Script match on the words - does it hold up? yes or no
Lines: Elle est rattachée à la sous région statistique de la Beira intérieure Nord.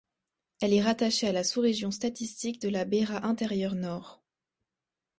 yes